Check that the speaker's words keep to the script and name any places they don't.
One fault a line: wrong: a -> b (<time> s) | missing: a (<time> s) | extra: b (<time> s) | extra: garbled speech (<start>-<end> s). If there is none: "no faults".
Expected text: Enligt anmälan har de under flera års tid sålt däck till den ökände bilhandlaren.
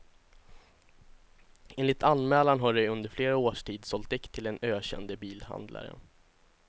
no faults